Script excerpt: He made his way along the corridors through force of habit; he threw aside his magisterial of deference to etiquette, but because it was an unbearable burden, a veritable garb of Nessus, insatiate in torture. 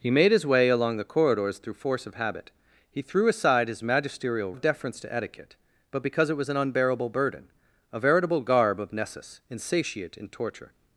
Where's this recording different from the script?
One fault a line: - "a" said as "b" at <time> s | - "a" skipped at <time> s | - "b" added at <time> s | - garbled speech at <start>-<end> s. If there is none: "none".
none